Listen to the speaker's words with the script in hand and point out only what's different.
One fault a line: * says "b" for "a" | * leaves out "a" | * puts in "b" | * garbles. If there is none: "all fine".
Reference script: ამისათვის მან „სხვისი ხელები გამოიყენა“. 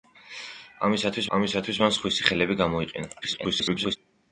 * puts in "ამისათვის"
* garbles